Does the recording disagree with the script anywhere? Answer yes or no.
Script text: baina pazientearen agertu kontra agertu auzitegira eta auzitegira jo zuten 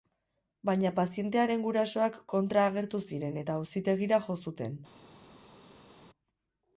yes